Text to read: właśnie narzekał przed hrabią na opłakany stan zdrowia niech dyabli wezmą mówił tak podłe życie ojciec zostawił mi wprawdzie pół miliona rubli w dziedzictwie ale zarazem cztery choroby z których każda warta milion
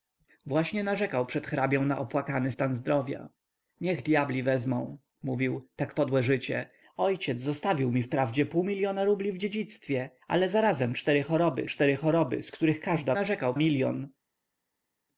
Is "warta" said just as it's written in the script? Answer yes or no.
no